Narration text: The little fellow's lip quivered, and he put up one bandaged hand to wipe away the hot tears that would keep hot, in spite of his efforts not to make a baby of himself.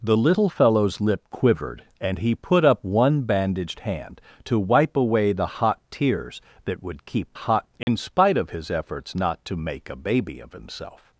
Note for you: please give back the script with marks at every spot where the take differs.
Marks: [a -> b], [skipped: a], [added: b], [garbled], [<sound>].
The little fellow's lip quivered, and he put up one bandaged hand to wipe away the hot tears that would keep hot, in [dropout] spite of his efforts not to make a baby of himself.